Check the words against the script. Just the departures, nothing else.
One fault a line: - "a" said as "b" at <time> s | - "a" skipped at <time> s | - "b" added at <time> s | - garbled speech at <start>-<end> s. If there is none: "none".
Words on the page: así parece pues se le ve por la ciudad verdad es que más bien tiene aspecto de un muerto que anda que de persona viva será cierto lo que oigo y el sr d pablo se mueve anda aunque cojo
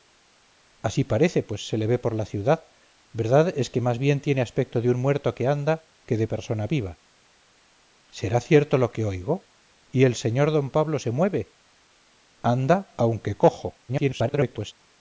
- garbled speech at 13.9-14.7 s